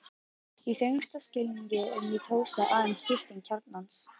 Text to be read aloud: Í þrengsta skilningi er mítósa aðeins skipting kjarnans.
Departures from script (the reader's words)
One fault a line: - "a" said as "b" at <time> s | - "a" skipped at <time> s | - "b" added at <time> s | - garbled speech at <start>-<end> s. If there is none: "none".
none